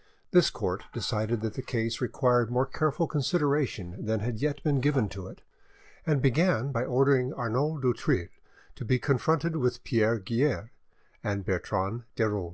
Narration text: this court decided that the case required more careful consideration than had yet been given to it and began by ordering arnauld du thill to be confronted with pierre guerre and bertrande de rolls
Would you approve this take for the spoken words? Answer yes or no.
yes